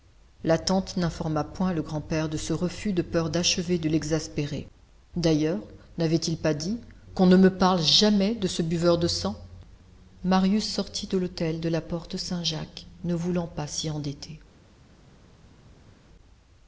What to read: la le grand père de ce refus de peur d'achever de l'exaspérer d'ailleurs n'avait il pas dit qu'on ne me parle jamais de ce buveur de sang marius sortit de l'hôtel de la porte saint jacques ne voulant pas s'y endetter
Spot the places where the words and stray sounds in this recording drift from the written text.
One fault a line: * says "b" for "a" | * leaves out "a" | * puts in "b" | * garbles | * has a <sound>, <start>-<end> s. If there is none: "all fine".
* puts in "tante n'informa point"